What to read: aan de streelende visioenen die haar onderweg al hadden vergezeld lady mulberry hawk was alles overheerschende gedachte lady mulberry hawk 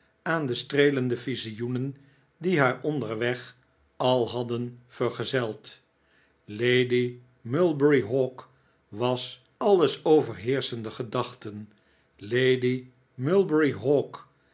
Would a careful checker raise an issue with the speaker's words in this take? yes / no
no